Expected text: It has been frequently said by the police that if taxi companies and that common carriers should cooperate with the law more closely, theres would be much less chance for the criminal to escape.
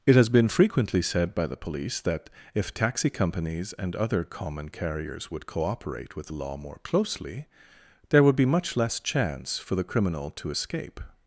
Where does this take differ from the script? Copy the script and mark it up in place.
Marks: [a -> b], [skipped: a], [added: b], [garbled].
It has been frequently said by the police that if taxi companies and [that -> other] common carriers [should -> would] cooperate with the law more closely, [theres -> there] would be much less chance for the criminal to escape.